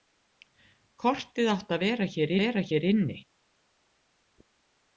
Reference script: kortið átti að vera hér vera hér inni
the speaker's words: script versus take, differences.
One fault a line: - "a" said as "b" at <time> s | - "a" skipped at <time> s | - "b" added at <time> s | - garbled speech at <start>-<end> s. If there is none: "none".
none